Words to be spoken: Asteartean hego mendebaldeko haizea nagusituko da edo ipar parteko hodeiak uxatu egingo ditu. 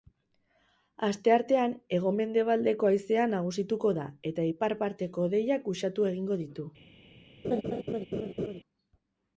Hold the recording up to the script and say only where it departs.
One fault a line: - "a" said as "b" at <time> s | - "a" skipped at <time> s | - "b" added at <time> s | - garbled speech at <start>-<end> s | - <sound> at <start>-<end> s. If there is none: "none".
- "edo" said as "eta" at 4.3 s
- laugh at 7.4-8.6 s